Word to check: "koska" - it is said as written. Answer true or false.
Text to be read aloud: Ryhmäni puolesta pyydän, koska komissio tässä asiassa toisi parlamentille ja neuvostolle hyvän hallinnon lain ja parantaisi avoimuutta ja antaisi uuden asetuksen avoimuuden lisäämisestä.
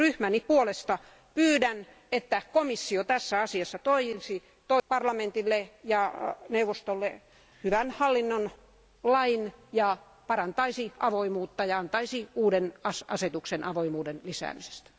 false